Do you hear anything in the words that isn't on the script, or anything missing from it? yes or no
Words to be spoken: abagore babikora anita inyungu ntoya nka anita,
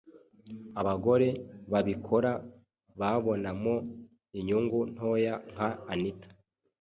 yes